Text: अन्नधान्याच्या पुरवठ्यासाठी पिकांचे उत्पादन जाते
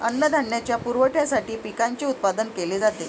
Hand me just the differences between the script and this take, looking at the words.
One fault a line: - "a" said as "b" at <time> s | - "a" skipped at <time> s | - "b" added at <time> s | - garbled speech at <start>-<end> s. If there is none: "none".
- "केले" added at 2.5 s